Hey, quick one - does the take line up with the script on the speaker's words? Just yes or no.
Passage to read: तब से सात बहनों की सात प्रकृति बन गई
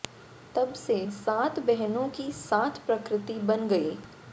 yes